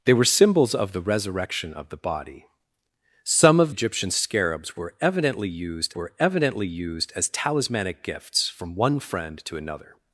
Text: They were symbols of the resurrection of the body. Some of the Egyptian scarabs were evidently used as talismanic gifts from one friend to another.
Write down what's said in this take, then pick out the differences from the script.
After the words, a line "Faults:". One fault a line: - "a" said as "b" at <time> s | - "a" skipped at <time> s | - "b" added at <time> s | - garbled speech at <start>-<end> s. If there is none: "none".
They were symbols of the resurrection of the body. Some of Egyptian scarabs were evidently used were evidently used as talismanic gifts from one friend to another.
Faults:
- "the" skipped at 3.7 s
- "were evidently used" added at 5.9 s